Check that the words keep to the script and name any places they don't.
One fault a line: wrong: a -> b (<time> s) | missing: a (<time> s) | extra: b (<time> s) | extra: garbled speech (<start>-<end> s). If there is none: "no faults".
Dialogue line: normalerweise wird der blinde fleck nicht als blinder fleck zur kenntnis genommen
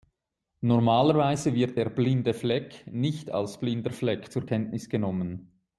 no faults